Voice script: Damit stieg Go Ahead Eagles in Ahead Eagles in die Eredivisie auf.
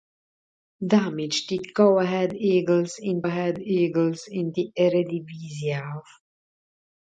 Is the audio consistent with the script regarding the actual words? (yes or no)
yes